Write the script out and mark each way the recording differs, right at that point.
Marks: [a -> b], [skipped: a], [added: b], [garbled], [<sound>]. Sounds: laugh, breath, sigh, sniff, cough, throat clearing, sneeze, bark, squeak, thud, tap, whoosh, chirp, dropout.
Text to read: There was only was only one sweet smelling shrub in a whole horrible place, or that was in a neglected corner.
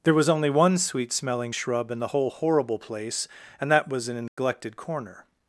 There was only [skipped: was only] one sweet smelling shrub in [a -> the] whole horrible place, [or -> and] that was in a neglected [dropout] corner.